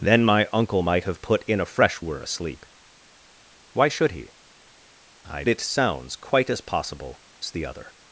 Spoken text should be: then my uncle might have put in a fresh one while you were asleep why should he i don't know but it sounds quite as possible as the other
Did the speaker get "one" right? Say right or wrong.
wrong